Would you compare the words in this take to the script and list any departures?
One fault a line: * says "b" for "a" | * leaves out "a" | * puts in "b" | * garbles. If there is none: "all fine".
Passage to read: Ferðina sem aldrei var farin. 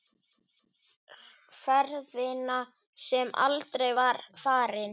all fine